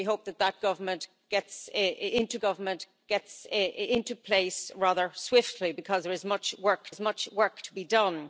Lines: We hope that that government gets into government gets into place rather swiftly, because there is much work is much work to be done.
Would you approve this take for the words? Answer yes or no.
yes